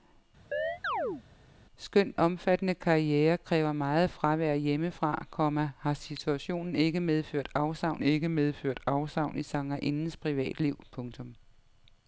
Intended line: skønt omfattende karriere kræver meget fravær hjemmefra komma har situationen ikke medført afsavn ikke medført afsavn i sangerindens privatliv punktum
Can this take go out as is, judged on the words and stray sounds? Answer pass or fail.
fail